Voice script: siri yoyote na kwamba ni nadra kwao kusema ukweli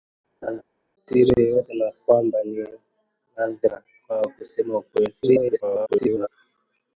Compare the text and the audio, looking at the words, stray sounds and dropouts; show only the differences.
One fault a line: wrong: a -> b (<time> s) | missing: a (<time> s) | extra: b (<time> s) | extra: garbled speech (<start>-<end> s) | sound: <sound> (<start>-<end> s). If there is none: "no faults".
sound: laugh (0.4-0.6 s)
extra: garbled speech (5.2-6.3 s)